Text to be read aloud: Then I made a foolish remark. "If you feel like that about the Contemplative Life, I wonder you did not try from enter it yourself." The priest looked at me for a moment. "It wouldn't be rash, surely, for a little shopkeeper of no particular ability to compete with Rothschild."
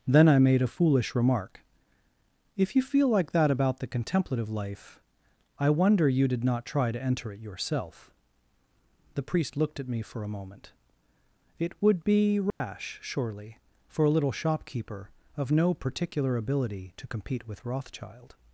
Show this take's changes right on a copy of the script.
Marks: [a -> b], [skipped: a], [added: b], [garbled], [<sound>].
Then I made a foolish remark. "If you feel like that about the Contemplative Life, I wonder you did not try [from -> to] enter it yourself." The priest looked at me for a moment. "It [wouldn't -> would] be rash, [dropout] surely, for a little shopkeeper of no particular ability to compete with Rothschild."